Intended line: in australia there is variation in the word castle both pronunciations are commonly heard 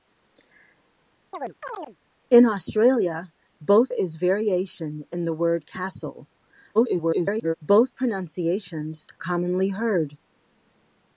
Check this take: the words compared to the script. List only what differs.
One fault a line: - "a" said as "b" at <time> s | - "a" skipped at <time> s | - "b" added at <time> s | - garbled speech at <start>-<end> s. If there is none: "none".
- "there" said as "both" at 3.6 s
- garbled speech at 6.7-7.5 s
- "are" skipped at 9.1 s